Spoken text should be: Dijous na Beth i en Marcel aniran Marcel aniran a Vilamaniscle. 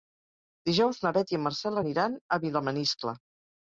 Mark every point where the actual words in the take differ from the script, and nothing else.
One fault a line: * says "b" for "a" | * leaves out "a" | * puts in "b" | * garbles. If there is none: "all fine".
* leaves out "Marcel aniran"